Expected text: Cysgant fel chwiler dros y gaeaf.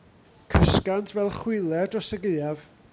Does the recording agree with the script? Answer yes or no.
yes